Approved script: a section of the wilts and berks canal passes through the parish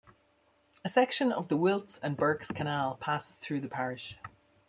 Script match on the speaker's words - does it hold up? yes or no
yes